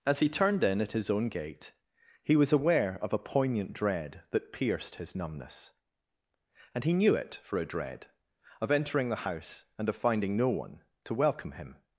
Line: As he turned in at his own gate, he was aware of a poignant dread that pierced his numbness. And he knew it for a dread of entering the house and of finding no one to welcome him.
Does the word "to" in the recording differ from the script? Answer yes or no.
no